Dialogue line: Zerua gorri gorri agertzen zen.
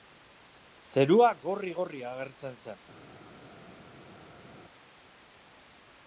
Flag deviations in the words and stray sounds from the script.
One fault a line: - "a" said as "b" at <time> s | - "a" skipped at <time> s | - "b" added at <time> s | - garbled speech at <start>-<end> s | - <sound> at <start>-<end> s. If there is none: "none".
none